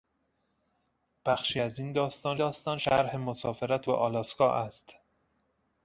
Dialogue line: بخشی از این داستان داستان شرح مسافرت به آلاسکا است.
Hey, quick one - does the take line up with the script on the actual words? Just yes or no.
yes